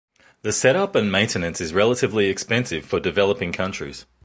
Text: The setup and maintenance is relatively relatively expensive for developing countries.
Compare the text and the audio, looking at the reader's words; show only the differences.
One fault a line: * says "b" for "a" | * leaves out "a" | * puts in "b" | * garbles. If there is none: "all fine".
* leaves out "relatively"